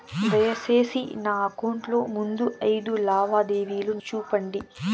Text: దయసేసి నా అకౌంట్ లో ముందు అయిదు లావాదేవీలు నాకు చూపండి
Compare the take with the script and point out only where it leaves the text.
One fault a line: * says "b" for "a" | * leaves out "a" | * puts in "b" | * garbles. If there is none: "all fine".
* leaves out "నాకు"